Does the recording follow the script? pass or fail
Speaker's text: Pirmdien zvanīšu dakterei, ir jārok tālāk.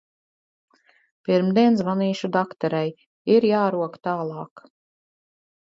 pass